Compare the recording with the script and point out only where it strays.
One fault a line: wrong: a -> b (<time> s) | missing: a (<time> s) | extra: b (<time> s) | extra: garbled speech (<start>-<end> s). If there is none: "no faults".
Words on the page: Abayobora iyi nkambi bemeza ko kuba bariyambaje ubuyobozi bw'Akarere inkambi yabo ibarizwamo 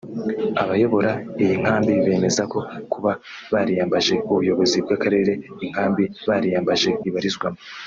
wrong: yabo -> bariyambaje (6.3 s)